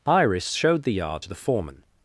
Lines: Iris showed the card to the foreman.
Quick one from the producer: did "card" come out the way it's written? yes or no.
no